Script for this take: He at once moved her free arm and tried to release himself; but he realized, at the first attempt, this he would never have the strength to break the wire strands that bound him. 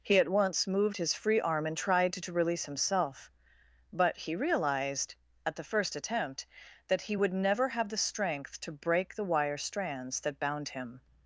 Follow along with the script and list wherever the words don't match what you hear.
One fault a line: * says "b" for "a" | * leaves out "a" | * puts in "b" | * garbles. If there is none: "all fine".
* says "his" for "her"
* says "that" for "this"